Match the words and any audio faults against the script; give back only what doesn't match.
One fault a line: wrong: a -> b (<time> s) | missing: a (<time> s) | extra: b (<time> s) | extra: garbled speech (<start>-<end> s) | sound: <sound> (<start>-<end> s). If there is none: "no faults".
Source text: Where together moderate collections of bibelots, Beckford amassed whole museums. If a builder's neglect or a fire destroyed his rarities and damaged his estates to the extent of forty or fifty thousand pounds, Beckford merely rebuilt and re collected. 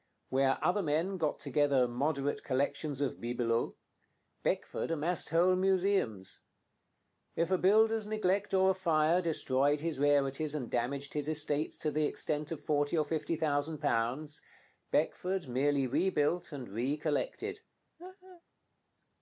extra: other men got (0.7 s)
sound: laugh (18.0-18.4 s)